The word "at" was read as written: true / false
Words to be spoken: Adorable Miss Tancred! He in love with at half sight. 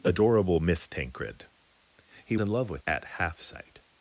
true